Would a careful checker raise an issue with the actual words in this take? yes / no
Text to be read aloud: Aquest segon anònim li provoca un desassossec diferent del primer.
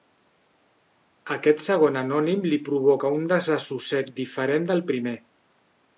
no